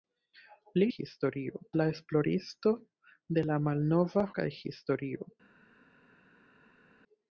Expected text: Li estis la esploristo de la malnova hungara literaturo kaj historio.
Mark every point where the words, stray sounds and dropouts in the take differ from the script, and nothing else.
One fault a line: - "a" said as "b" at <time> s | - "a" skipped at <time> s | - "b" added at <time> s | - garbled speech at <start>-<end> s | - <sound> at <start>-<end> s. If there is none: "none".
- "estis" said as "historio" at 0.9 s
- "hungara literaturo" skipped at 4.3 s